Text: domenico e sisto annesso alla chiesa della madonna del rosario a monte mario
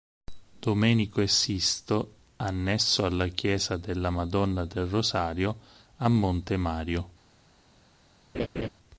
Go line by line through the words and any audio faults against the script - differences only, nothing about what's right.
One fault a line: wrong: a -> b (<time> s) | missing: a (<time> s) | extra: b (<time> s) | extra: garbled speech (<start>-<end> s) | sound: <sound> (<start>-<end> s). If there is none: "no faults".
sound: laugh (8.3-8.7 s)